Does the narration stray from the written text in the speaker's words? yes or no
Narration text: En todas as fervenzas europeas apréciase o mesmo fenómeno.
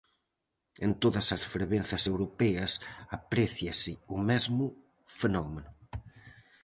no